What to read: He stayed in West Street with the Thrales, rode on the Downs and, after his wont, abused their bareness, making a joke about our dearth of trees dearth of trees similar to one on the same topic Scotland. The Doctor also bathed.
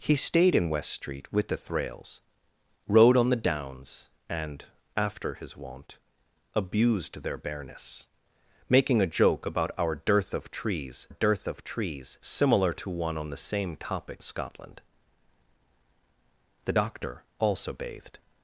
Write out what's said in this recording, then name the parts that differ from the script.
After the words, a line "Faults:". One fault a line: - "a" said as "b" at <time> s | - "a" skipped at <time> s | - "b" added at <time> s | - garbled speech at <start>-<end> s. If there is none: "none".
He stayed in West Street with the Thrales, rode on the Downs and, after his wont, abused their bareness, making a joke about our dearth of trees dearth of trees similar to one on the same topic Scotland. The Doctor also bathed.
Faults:
none